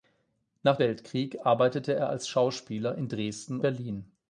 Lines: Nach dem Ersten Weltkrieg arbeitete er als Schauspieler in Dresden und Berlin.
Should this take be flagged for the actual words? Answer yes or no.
yes